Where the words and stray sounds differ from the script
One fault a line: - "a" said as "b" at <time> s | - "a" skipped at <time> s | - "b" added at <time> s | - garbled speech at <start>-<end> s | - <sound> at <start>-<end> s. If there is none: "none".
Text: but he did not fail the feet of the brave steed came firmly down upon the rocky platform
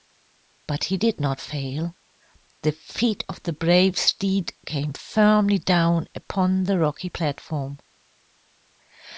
none